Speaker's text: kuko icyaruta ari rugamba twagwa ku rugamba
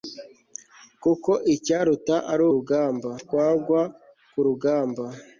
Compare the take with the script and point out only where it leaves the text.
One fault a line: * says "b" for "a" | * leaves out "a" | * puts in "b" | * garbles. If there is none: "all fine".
all fine